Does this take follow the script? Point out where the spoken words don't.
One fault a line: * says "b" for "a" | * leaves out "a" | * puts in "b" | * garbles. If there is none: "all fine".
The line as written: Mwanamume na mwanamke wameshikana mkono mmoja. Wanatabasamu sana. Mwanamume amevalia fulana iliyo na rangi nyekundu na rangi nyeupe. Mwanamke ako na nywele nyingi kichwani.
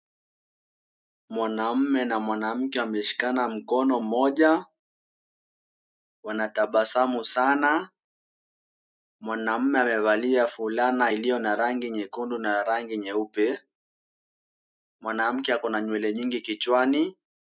all fine